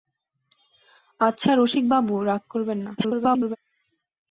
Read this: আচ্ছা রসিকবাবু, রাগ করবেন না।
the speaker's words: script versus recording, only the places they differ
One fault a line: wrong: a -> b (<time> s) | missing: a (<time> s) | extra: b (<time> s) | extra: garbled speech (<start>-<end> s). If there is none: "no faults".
extra: garbled speech (3.0-3.6 s)